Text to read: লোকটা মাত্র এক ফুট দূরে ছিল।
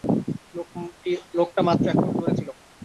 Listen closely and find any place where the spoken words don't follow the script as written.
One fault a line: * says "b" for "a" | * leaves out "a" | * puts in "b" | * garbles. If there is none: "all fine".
all fine